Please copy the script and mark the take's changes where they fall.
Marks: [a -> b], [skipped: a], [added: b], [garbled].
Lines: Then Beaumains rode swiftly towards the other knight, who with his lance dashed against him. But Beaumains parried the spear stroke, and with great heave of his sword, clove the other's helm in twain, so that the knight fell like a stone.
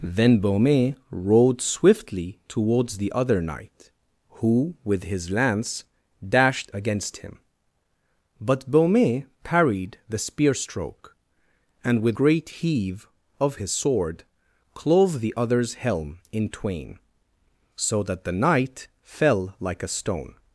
Then Beaumains rode swiftly towards the other knight, who with his lance dashed against him. But Beaumains parried the spear stroke, and with great heave of his sword, clove the other's helm in twain, so that the knight fell like a stone.